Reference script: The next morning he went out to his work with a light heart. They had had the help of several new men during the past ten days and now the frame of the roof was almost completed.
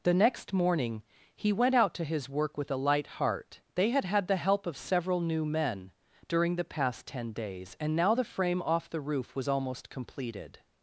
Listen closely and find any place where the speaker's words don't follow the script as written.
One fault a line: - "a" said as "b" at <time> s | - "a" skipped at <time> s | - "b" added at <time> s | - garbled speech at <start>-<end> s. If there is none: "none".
- "of" said as "off" at 8.6 s